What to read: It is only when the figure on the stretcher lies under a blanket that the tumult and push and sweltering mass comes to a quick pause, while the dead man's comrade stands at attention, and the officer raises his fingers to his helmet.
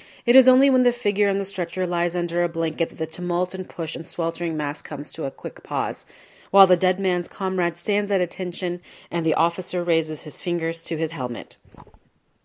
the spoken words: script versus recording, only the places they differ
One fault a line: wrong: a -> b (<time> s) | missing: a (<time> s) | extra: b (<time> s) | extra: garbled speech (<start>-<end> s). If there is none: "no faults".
no faults